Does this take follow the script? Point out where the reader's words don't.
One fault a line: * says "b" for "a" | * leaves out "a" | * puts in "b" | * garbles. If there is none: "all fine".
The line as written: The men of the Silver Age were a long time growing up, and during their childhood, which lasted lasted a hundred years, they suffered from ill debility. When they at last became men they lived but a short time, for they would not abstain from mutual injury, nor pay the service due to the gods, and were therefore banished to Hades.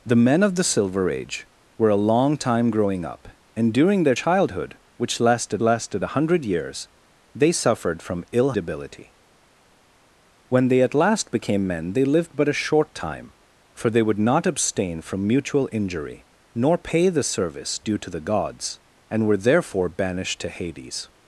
all fine